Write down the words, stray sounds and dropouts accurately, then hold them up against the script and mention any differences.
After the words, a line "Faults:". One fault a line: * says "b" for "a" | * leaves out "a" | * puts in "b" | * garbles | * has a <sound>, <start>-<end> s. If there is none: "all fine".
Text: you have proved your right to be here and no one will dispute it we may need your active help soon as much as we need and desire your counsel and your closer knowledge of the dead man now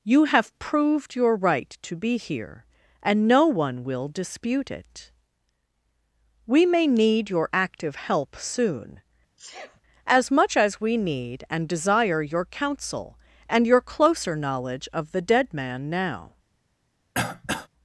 you have proved your right to be here and no one will dispute it we may need your active help soon as much as we need and desire your counsel and your closer knowledge of the dead man now
Faults:
* has a sneeze, 9.4-9.8 s
* has a throat clearing, 17.1-17.7 s